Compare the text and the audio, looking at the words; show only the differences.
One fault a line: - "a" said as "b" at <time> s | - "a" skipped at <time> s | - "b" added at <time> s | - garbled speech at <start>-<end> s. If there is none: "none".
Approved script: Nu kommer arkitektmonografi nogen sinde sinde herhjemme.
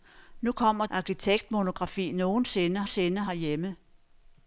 none